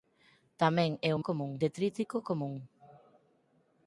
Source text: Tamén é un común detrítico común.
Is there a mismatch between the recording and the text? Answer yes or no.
no